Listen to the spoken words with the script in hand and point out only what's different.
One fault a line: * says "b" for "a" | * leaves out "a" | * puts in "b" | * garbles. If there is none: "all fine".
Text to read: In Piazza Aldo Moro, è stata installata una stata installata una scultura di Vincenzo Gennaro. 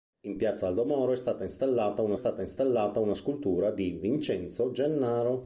all fine